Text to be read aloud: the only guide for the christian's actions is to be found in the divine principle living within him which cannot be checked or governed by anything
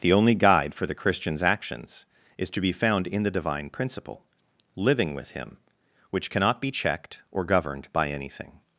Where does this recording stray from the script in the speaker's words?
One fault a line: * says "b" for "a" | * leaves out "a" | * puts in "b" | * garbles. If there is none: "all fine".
* says "with" for "within"